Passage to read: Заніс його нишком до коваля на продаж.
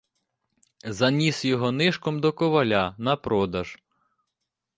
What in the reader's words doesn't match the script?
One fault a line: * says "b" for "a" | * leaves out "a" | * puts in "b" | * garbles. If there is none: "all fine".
all fine